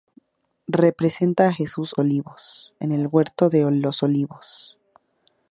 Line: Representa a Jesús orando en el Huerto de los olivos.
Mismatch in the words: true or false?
true